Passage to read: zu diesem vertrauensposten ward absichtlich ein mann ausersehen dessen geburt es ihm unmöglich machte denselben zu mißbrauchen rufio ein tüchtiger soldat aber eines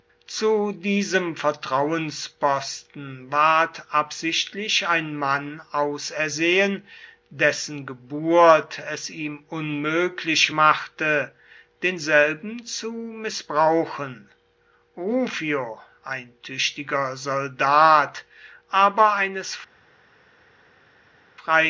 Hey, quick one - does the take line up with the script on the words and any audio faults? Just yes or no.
yes